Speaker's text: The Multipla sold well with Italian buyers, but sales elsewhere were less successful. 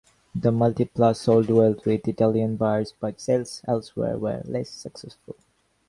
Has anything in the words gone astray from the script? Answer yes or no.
no